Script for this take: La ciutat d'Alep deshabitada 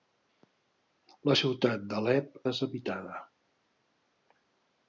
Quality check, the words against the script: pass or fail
pass